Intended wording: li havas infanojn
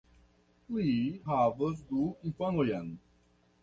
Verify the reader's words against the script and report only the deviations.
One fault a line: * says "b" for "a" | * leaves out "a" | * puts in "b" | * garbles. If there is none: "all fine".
* puts in "du"